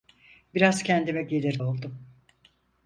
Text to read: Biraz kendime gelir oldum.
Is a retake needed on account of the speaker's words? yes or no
no